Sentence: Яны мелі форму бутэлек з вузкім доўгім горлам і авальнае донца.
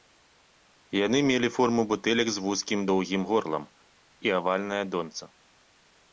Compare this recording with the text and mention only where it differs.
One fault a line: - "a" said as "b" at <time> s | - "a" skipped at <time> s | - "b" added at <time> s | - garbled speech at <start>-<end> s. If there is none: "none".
none